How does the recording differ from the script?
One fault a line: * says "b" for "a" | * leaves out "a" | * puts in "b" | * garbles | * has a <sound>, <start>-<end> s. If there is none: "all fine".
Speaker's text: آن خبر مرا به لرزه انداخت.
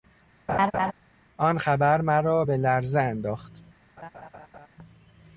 * has a laugh, 0.5-0.9 s
* has a laugh, 4.0-4.7 s